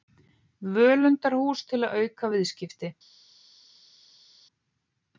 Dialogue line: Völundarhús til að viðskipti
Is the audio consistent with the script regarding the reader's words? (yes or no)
no